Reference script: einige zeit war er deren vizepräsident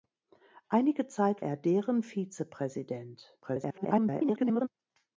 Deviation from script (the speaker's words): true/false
true